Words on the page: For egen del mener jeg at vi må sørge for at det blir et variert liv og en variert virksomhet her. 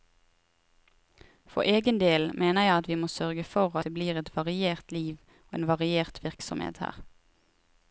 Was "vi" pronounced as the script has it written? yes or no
yes